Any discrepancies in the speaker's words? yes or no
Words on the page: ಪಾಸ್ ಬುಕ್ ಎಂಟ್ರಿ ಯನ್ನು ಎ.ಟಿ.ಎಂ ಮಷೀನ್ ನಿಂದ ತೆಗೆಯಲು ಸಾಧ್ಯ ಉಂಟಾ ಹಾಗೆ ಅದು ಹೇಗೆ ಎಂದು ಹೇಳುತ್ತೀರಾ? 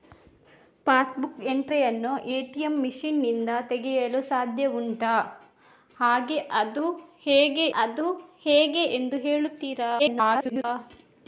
yes